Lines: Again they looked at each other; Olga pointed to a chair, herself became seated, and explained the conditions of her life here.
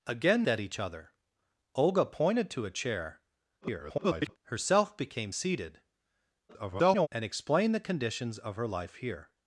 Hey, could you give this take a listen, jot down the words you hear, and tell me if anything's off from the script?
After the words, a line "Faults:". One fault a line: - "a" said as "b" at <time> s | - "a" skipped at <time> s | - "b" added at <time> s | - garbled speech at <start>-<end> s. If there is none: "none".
Again at each other; Olga pointed to a chair, [garbled] herself became seated, [garbled] and explained the conditions of her life here.
Faults:
- "they looked" skipped at 0.5 s
- garbled speech at 3.6-4.4 s
- garbled speech at 6.5-7.1 s